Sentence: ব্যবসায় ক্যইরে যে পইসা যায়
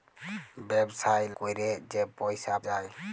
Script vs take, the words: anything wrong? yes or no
no